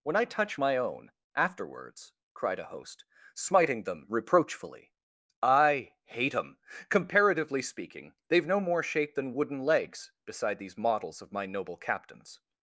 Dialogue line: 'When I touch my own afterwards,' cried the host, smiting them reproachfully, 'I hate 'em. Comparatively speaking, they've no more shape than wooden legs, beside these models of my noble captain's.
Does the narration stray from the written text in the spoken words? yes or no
yes